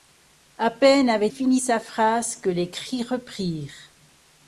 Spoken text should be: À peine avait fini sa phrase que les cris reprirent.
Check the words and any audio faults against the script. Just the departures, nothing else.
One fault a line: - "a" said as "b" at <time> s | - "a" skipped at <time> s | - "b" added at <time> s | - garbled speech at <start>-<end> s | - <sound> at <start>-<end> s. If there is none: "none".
none